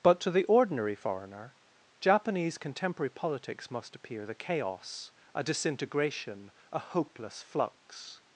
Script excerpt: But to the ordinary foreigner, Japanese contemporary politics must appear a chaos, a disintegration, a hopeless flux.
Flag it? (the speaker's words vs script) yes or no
yes